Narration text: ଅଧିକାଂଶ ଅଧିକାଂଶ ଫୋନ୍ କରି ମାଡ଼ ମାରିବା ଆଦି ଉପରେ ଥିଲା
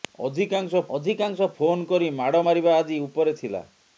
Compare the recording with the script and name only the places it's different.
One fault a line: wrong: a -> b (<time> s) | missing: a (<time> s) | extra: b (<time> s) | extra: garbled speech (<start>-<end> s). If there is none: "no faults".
no faults